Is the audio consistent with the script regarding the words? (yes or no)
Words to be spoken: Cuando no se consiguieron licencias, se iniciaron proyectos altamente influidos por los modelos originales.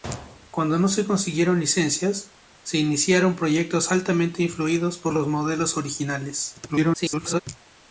no